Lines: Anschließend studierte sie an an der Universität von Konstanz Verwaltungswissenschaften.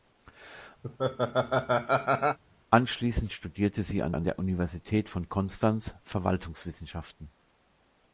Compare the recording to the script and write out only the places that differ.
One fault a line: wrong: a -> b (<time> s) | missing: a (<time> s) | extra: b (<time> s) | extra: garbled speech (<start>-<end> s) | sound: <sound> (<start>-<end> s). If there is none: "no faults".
sound: laugh (0.8-2.4 s)